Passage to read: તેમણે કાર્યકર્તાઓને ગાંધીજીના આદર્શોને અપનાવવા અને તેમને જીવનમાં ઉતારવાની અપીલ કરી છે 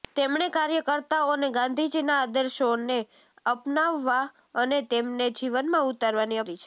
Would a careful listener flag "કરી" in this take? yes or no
yes